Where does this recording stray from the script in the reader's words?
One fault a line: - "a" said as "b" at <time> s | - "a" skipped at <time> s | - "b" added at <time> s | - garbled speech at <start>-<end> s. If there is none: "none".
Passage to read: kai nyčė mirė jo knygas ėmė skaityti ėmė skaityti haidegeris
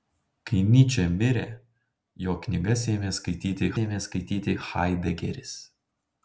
none